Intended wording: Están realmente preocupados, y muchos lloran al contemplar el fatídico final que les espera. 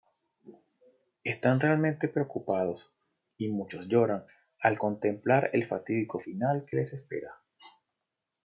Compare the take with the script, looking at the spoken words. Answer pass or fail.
pass